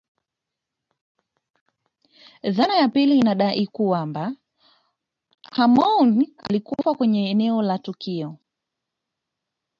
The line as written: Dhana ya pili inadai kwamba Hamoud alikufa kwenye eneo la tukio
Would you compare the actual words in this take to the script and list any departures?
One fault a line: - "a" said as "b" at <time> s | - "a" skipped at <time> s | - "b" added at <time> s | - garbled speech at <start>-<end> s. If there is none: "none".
none